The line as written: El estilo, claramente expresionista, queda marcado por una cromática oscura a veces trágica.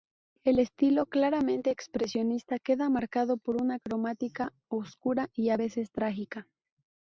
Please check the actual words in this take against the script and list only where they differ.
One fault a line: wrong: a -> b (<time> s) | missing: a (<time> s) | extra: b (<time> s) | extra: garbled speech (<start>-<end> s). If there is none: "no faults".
extra: y (5.3 s)